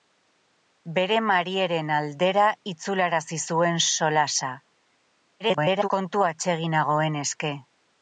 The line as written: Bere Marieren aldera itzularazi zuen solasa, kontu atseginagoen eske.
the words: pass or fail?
fail